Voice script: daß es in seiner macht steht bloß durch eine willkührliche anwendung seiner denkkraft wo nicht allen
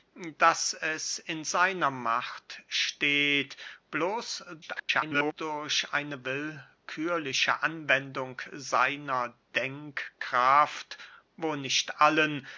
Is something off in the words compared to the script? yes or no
yes